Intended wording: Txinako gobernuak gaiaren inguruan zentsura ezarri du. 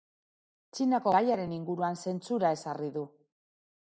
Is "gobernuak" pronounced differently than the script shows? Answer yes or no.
yes